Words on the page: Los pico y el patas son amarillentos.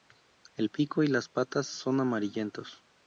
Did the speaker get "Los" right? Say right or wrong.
wrong